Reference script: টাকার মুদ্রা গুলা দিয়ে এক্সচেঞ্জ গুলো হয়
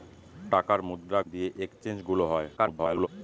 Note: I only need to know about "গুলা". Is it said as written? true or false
false